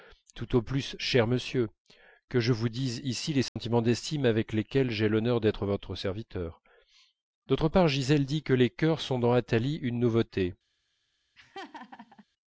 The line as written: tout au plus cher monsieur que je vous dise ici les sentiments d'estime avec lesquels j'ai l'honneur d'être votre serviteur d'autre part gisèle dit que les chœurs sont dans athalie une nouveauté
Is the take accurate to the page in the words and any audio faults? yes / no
no